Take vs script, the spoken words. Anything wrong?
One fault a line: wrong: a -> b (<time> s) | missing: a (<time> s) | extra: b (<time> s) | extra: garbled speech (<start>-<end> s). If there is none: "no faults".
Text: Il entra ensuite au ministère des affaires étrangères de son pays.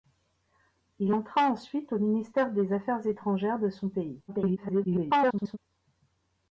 extra: garbled speech (4.3-5.6 s)